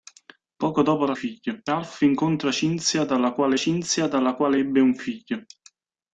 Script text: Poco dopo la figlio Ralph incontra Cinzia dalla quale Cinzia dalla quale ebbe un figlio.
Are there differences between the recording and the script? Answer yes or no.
no